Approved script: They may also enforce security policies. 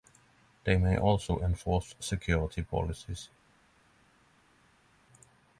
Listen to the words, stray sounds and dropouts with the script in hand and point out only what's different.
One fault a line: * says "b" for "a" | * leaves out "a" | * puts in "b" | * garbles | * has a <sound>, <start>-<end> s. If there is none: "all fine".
all fine